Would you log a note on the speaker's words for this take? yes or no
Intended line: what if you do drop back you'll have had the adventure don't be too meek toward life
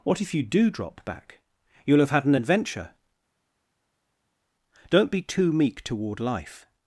yes